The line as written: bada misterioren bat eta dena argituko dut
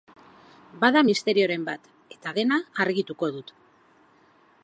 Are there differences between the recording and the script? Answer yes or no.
no